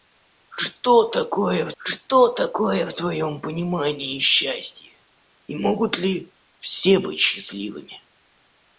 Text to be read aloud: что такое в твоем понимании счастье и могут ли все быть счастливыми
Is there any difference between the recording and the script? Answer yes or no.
yes